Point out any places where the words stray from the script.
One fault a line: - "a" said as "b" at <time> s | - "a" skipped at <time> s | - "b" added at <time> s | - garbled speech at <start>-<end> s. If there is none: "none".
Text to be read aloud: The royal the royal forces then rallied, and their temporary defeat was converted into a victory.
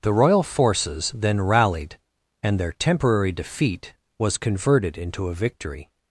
- "the royal" skipped at 0.4 s